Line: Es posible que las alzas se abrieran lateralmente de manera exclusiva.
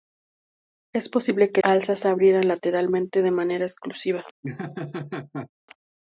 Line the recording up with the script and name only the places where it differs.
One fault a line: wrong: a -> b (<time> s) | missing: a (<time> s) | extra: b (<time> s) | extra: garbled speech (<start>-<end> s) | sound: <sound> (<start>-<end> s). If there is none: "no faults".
missing: las (1.6 s)
sound: laugh (4.4-5.5 s)